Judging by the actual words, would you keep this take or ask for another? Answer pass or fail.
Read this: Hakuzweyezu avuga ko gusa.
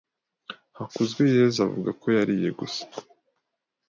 fail